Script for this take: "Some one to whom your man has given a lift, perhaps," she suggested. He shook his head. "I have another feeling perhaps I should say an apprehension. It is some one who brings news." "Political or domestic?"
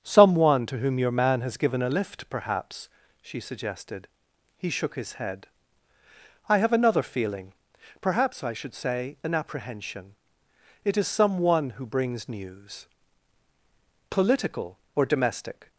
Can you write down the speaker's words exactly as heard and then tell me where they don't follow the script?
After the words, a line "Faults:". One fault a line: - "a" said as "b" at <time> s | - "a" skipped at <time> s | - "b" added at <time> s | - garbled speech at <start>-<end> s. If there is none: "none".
"Some one to whom your man has given a lift, perhaps," she suggested. He shook his head. "I have another feeling perhaps I should say an apprehension. It is some one who brings news." "Political or domestic?"
Faults:
none